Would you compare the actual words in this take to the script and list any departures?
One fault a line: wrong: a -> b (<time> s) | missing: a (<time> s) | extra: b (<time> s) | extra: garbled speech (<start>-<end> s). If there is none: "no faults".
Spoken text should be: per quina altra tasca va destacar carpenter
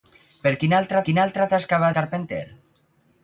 extra: quina altra (1.1 s)
missing: destacar (1.9 s)